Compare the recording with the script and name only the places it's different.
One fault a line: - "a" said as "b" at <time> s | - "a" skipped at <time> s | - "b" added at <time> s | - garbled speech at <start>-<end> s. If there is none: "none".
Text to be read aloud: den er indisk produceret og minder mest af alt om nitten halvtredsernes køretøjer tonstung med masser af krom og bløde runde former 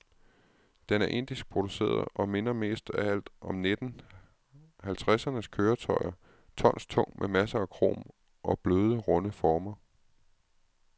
none